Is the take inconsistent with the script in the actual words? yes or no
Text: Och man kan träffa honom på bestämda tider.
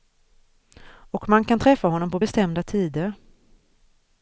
no